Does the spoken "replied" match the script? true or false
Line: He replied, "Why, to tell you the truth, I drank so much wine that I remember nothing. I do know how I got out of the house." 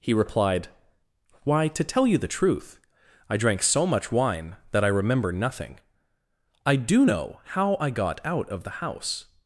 true